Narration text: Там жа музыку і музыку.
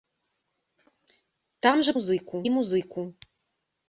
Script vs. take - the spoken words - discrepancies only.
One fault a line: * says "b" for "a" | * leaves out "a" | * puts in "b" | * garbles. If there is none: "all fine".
all fine